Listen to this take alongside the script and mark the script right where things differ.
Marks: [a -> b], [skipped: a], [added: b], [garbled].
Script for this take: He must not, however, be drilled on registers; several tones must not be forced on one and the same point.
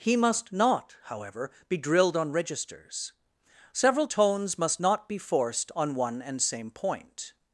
He must not, however, be drilled on registers; several tones must not be forced on one and [skipped: the] same point.